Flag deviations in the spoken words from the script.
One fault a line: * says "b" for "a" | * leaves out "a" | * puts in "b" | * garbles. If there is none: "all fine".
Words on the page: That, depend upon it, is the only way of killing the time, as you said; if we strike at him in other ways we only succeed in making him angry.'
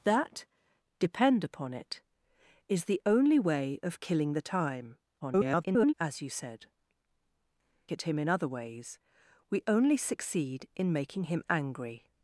* garbles
* leaves out "if we strike"